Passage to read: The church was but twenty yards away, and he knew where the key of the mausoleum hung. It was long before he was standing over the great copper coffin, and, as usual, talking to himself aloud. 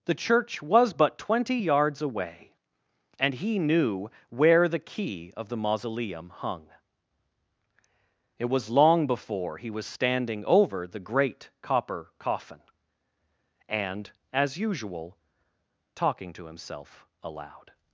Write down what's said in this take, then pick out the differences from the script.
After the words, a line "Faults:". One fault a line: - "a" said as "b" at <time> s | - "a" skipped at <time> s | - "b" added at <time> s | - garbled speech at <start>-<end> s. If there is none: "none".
The church was but twenty yards away, and he knew where the key of the mausoleum hung. It was long before he was standing over the great copper coffin, and, as usual, talking to himself aloud.
Faults:
none